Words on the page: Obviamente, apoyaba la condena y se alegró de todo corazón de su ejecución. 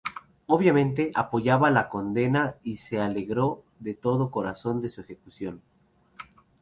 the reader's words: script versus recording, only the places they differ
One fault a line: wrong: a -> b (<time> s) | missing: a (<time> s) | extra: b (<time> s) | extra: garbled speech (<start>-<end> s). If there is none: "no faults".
no faults